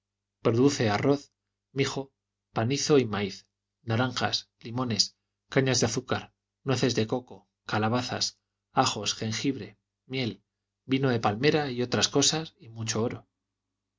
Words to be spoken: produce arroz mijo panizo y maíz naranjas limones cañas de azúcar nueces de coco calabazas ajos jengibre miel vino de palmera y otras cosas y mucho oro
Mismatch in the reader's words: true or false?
false